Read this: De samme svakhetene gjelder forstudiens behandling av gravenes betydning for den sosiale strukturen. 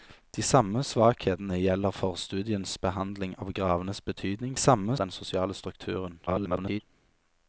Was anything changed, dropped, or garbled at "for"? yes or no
yes